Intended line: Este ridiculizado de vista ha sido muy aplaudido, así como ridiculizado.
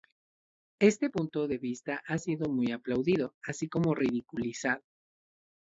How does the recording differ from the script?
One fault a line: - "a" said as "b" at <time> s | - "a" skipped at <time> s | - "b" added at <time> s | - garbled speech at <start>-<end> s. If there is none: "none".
- "ridiculizado" said as "punto" at 1.1 s